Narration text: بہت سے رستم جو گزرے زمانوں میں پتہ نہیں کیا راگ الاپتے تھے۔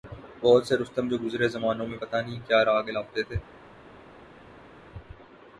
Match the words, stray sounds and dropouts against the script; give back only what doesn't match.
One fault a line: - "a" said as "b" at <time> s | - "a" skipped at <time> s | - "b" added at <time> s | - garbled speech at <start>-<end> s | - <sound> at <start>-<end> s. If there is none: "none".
none